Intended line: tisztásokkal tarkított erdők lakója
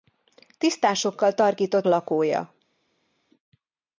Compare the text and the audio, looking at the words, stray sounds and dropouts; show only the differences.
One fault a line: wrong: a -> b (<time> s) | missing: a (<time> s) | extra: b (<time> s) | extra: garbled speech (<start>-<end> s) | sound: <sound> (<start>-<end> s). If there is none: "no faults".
missing: erdők (1.9 s)